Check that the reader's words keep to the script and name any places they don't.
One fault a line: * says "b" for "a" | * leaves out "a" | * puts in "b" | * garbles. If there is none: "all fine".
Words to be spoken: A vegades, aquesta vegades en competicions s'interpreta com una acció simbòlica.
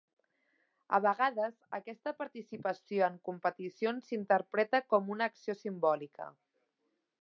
* says "participació" for "vegades"